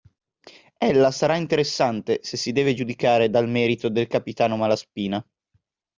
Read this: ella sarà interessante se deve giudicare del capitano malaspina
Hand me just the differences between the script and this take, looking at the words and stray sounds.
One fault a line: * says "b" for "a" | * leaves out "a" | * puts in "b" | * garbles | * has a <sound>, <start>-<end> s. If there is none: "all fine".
* puts in "si"
* puts in "dal merito"